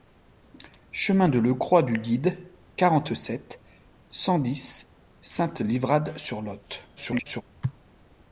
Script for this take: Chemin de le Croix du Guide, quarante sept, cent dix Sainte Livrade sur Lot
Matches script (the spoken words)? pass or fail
fail